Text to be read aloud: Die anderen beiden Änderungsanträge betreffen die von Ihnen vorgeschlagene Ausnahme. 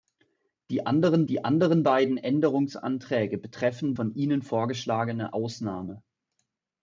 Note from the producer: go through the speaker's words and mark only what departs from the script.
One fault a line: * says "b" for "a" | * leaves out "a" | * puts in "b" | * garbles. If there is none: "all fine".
* puts in "die anderen"
* leaves out "die"